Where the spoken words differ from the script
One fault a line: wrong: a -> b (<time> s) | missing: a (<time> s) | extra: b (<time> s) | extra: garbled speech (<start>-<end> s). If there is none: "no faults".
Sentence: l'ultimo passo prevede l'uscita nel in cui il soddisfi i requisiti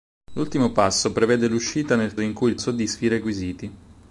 no faults